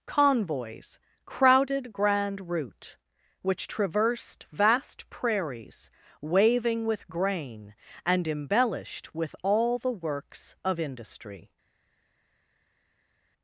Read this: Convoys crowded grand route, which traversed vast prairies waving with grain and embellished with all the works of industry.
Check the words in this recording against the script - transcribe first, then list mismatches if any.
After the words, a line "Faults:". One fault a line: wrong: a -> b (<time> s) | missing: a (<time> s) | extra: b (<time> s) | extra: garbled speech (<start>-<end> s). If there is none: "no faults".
Convoys crowded grand route, which traversed vast prairies waving with grain and embellished with all the works of industry.
Faults:
no faults